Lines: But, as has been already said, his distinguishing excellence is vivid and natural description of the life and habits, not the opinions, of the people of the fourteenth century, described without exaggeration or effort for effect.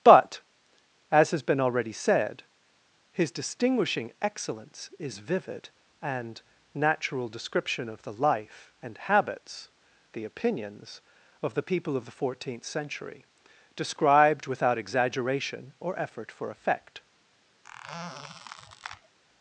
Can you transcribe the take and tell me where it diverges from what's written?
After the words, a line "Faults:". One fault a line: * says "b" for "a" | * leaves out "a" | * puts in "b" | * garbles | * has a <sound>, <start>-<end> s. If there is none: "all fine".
But, as has been already said, his distinguishing excellence is vivid and natural description of the life and habits, the opinions, of the people of the fourteenth century, described without exaggeration or effort for effect.
Faults:
* leaves out "not"
* has a squeak, 17.6-19.2 s